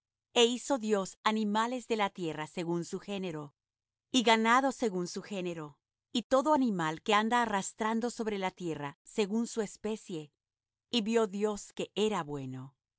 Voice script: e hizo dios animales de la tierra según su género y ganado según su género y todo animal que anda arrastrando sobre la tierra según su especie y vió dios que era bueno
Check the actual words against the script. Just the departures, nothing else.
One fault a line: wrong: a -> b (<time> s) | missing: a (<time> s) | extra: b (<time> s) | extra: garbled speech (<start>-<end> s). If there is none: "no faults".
no faults